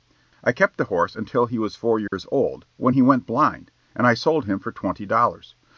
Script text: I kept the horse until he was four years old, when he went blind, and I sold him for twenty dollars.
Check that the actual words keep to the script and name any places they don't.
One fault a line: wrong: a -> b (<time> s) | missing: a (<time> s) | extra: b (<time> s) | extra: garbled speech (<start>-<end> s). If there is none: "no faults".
no faults